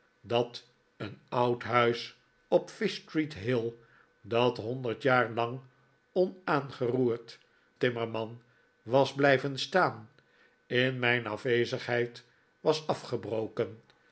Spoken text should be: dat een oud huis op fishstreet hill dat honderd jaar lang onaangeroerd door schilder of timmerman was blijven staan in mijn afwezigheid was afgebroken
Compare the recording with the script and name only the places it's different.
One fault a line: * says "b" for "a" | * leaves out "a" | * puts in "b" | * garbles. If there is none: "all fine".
* leaves out "door schilder of"